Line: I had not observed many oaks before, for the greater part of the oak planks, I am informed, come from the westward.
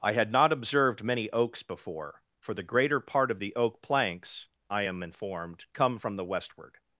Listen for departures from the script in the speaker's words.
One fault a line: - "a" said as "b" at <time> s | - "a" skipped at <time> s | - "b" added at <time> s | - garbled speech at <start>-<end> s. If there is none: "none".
none